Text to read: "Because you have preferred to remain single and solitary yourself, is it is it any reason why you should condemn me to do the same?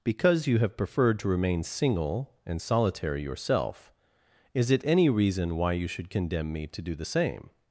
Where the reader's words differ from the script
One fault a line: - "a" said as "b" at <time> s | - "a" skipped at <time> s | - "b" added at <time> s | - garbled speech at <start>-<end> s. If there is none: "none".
- "is it" skipped at 4.8 s